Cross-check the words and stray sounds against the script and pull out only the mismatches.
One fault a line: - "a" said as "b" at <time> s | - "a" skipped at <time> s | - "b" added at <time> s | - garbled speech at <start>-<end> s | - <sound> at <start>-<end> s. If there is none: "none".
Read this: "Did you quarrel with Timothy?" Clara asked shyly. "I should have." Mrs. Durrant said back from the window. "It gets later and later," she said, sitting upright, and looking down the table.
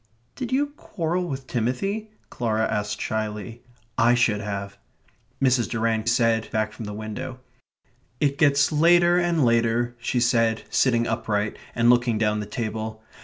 none